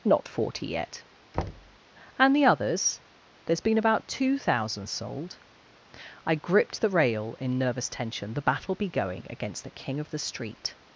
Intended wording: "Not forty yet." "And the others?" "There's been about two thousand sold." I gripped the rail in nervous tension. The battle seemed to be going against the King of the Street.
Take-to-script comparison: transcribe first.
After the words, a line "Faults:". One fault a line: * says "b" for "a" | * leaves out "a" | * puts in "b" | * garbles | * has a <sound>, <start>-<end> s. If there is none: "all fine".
"Not forty yet." "And the others?" "There's been about two thousand sold." I gripped the rail in nervous tension. The battle be going against the King of the Street.
Faults:
* has a thud, 1.3-1.8 s
* leaves out "seemed to"